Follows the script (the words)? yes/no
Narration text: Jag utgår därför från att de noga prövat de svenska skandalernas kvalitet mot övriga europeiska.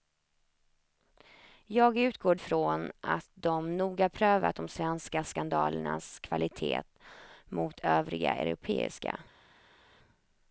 no